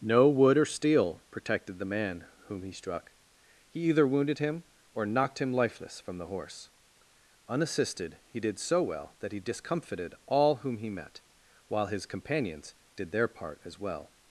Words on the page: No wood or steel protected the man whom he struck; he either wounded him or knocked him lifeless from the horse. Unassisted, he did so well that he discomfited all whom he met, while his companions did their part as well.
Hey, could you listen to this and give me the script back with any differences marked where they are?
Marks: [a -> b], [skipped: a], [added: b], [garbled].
No wood or steel protected the man whom he struck; he either wounded him or knocked him lifeless from the horse. Unassisted, he did so well that he discomfited all whom he met, while his companions did their part as well.